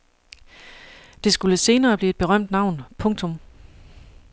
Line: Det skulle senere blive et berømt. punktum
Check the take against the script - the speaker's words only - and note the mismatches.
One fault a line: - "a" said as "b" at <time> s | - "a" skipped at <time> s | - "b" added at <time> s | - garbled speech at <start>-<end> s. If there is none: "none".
- "navn" added at 2.5 s